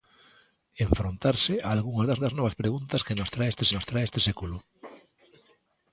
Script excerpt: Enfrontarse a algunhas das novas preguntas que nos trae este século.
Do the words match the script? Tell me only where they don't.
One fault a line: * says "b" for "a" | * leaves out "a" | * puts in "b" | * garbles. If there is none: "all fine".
* puts in "das"
* puts in "nos trae este"